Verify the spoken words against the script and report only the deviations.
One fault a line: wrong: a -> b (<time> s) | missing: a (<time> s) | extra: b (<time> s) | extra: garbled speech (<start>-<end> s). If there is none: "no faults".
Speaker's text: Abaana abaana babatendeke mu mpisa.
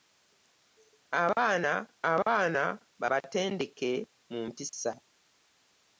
no faults